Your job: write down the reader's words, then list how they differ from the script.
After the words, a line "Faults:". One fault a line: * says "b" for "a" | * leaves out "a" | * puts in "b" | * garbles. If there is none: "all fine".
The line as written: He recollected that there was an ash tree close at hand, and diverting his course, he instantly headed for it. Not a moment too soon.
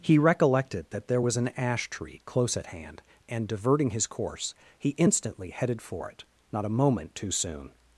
He recollected that there was an ash tree close at hand, and diverting his course, he instantly headed for it. Not a moment too soon.
Faults:
all fine